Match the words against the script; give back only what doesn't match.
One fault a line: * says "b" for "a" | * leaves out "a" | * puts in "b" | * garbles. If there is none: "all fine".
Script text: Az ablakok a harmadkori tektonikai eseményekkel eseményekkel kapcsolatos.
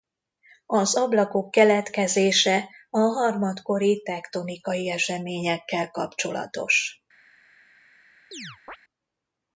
* puts in "keletkezése"
* leaves out "eseményekkel"